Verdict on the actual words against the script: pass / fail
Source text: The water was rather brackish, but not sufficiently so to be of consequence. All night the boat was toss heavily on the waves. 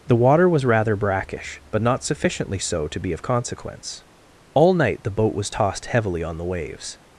fail